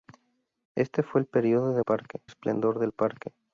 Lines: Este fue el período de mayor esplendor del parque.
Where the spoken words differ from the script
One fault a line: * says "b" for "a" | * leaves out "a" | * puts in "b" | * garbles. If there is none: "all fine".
* says "parque" for "mayor"